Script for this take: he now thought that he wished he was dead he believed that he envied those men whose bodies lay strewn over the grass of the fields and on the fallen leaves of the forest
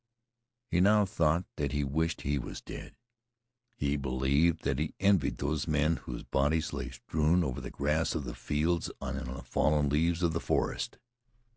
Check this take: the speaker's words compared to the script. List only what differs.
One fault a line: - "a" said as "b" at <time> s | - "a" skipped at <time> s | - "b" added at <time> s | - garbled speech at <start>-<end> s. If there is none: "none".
none